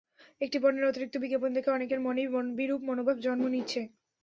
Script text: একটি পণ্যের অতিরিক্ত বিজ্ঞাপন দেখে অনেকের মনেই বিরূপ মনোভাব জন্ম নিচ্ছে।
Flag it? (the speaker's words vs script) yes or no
no